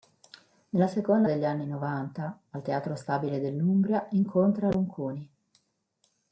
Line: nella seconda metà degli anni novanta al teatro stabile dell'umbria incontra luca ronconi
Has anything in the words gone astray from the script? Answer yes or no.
yes